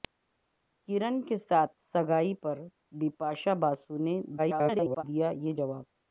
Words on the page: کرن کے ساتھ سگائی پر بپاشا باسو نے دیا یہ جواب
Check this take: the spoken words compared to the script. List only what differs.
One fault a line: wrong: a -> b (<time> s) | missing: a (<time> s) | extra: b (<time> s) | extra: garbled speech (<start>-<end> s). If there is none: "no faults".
extra: garbled speech (4.4-5.0 s)